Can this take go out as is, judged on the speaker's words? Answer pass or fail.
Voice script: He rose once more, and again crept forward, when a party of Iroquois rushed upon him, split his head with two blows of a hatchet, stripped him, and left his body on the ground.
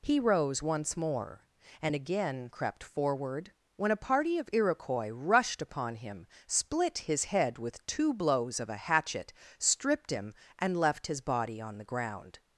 pass